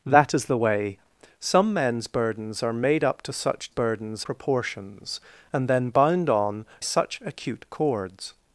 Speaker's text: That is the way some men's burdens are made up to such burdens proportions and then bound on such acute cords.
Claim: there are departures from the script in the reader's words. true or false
false